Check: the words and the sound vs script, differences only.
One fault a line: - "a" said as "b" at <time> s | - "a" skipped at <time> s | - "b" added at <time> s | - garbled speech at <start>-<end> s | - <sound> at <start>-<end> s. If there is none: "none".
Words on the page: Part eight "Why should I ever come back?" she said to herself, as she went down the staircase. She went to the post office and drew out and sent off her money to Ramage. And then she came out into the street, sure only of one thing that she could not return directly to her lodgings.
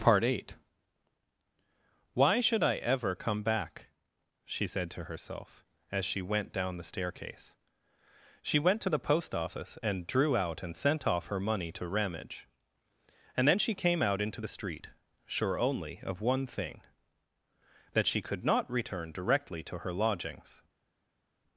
none